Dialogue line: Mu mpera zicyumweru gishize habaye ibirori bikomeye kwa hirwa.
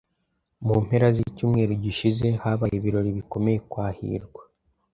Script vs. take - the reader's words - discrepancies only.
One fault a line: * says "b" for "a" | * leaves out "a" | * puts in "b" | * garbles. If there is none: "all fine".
all fine